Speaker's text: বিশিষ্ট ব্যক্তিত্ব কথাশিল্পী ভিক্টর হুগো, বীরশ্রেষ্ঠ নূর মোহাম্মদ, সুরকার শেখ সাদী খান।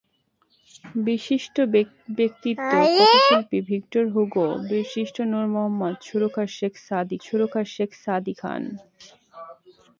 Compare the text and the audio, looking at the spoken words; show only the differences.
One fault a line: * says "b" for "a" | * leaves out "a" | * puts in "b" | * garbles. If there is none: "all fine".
* puts in "সুরকার শেখ সাদী"